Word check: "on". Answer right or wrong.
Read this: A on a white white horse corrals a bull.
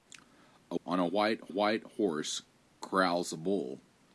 right